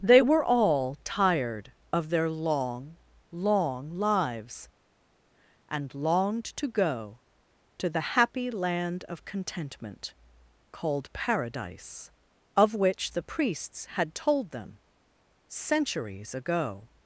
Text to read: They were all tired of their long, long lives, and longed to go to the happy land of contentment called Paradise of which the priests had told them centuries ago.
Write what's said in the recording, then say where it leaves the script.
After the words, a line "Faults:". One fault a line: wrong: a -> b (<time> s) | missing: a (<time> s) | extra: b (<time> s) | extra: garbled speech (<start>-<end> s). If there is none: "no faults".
They were all tired of their long, long lives, and longed to go to the happy land of contentment called Paradise of which the priests had told them centuries ago.
Faults:
no faults